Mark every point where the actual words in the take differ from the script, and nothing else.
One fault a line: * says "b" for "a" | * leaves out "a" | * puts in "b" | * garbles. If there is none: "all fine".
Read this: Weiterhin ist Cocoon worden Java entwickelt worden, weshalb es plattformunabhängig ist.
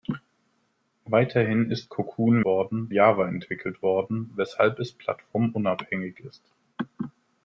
all fine